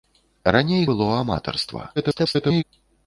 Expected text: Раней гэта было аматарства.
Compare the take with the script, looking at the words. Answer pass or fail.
fail